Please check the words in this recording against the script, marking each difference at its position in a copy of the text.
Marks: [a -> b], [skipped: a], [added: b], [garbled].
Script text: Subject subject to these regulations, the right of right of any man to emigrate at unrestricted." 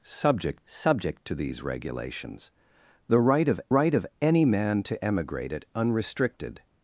Subject subject to these regulations, the right of right of any man to emigrate at unrestricted."